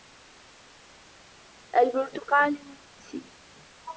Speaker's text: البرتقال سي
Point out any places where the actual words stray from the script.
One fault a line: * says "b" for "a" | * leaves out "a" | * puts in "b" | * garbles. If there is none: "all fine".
all fine